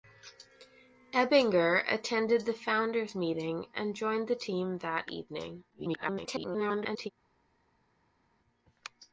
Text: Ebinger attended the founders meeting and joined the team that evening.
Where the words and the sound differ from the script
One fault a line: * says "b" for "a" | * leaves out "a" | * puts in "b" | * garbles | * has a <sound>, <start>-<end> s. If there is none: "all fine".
* garbles